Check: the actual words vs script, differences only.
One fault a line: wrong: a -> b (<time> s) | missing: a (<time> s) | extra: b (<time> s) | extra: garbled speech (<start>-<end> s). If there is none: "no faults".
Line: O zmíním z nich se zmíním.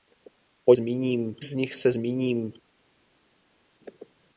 no faults